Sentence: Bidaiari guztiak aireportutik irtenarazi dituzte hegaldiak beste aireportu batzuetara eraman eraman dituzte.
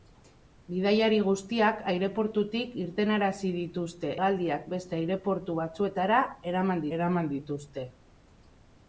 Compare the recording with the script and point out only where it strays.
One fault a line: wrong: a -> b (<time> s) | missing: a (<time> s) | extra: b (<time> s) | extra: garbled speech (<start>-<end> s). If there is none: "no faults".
no faults